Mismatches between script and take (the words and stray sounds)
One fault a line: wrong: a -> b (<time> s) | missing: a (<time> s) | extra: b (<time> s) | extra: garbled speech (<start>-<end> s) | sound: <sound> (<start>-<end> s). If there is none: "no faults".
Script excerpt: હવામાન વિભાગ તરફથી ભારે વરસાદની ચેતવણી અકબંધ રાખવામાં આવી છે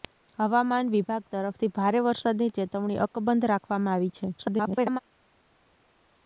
extra: garbled speech (4.4-5.0 s)